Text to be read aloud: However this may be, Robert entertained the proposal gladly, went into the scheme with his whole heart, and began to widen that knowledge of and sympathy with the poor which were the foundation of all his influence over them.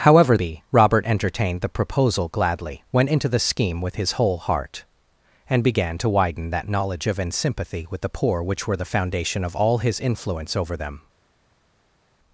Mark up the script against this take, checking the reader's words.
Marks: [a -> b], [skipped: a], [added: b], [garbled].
However [skipped: this may] be, Robert entertained the proposal gladly, went into the scheme with his whole heart, and began to widen that knowledge of and sympathy with the poor which were the foundation of all his influence over them.